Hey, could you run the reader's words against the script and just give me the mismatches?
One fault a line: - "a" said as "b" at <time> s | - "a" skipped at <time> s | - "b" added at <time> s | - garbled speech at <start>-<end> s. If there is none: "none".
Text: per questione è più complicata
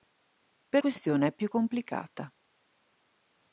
none